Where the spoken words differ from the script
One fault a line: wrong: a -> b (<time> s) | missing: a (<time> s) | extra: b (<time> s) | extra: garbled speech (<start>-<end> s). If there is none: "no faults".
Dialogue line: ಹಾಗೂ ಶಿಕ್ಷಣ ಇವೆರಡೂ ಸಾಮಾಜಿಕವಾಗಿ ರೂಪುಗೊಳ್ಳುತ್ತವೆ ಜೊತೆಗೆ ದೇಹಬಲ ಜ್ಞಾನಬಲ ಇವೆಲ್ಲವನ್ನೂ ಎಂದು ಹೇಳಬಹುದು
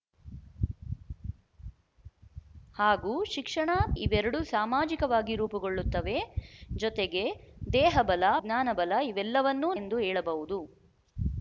no faults